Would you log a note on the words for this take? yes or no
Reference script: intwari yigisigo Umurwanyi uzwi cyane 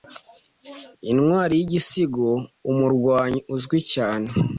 no